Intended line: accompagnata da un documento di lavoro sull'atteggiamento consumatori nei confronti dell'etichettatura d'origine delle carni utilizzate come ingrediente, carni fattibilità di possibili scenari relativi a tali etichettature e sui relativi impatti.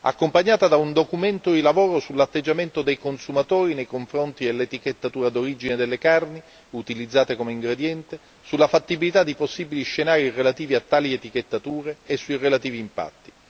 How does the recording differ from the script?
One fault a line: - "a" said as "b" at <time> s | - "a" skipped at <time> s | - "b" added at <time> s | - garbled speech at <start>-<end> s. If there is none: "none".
- "dei" added at 2.8 s
- "carni" said as "sulla" at 8.4 s